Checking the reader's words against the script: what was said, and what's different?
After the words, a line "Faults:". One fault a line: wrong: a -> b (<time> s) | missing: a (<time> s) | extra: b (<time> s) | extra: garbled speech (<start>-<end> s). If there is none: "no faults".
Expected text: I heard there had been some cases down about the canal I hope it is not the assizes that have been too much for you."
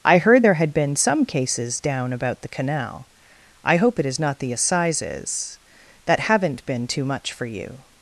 I heard there had been some cases down about the canal I hope it is not the assizes that haven't been too much for you."
Faults:
wrong: have -> haven't (6.2 s)